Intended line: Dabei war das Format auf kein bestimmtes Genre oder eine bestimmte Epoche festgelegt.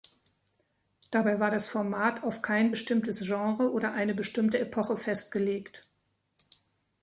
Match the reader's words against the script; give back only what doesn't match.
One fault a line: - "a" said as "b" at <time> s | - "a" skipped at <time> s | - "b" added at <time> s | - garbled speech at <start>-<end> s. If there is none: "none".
none